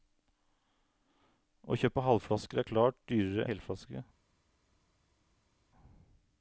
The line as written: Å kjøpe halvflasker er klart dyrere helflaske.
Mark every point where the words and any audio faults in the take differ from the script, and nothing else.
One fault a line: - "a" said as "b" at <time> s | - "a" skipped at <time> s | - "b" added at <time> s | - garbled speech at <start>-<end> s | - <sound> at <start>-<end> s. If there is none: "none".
none